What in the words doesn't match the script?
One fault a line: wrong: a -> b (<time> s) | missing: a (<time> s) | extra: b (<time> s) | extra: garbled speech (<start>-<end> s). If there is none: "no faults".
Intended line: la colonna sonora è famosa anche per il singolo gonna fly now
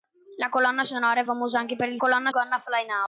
wrong: singolo -> colonna (2.0 s)